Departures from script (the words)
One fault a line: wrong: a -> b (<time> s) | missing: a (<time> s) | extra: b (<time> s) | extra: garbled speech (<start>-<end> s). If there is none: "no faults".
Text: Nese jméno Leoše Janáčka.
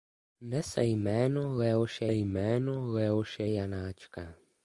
extra: jméno Leoše (2.1 s)